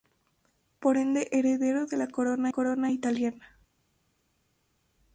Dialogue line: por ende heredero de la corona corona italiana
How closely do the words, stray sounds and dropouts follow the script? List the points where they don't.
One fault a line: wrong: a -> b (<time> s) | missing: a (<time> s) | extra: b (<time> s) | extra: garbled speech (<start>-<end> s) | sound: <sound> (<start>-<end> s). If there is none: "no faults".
no faults